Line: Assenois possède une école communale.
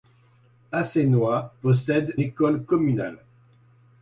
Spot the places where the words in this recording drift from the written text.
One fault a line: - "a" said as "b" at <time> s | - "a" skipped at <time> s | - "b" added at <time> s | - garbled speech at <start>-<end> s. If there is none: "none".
- "une" skipped at 2.2 s